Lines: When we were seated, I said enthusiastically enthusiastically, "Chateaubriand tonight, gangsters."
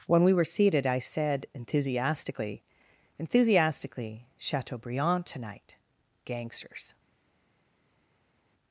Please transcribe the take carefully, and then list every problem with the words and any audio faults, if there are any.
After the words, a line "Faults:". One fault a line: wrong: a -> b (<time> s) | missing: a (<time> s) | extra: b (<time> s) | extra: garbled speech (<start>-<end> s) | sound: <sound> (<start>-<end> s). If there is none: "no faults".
When we were seated, I said enthusiastically enthusiastically, "Chateaubriand tonight, gangsters."
Faults:
no faults